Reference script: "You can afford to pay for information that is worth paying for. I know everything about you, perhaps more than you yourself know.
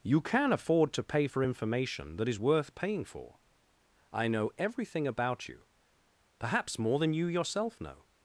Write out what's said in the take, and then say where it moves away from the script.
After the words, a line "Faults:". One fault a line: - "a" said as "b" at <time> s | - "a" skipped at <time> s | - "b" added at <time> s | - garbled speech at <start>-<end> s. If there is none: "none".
"You can afford to pay for information that is worth paying for. I know everything about you, perhaps more than you yourself know.
Faults:
none